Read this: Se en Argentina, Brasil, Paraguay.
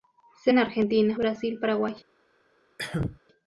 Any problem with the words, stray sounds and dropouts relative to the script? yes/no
yes